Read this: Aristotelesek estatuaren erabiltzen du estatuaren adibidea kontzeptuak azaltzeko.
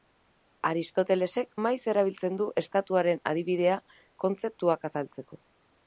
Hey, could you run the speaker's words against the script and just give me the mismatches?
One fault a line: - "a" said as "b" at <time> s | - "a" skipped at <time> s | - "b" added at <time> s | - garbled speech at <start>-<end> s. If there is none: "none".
- "estatuaren" said as "maiz" at 1.6 s